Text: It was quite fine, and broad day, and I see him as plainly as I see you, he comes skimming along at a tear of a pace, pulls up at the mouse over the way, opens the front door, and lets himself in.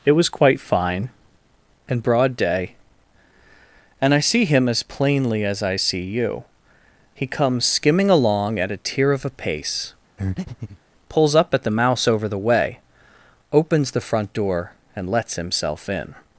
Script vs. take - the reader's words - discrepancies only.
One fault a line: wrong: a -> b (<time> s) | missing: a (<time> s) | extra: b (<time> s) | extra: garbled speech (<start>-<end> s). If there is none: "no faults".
no faults